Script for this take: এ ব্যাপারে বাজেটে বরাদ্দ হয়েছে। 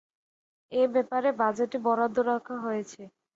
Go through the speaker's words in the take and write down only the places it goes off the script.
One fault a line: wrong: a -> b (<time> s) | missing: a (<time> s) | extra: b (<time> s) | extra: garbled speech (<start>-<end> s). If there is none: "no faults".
extra: রাখা (2.3 s)